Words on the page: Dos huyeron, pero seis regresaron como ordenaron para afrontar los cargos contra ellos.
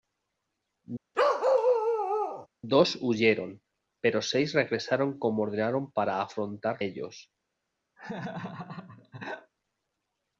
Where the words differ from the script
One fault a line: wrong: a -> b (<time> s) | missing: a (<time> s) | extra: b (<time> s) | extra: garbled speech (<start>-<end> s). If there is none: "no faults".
missing: los cargos contra (6.8 s)